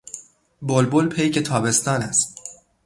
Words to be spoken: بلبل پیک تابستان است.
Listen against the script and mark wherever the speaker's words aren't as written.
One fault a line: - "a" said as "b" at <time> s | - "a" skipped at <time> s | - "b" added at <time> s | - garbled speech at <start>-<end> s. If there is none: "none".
none